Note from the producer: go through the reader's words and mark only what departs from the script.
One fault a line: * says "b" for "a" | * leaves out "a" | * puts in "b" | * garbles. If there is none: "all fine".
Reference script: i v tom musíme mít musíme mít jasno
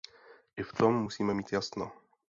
* leaves out "musíme mít"